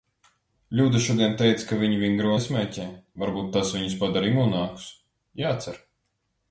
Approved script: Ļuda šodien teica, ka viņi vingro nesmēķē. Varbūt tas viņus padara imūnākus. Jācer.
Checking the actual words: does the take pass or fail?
pass